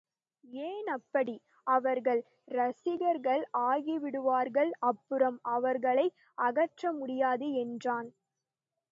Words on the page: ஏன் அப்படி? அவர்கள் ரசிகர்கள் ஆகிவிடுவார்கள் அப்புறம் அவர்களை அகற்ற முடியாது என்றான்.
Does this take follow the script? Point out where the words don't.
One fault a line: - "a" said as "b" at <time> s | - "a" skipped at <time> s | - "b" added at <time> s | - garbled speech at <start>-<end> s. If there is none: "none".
none